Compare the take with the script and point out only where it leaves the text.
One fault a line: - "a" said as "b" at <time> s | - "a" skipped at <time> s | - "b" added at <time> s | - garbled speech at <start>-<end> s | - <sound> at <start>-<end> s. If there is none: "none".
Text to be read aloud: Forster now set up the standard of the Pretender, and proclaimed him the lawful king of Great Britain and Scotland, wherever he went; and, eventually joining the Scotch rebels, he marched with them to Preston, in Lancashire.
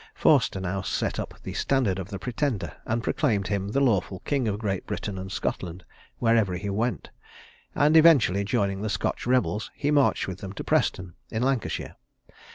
none